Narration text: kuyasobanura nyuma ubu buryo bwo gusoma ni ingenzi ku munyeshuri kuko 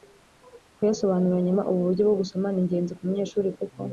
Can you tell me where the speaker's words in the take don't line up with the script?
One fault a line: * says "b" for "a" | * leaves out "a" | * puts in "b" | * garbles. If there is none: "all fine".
all fine